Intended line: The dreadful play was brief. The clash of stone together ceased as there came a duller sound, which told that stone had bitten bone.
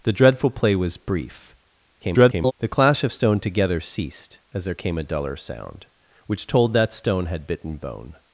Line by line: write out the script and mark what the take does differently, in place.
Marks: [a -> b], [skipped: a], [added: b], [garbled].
The dreadful play was brief. [garbled] The clash of stone together ceased as there came a duller sound, which told that stone had bitten bone.